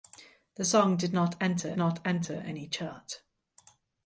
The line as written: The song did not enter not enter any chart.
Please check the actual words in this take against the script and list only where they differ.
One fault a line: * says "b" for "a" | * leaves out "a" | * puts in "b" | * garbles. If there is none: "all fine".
all fine